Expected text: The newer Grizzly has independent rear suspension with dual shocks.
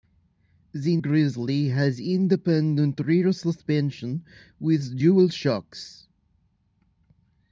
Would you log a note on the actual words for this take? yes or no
yes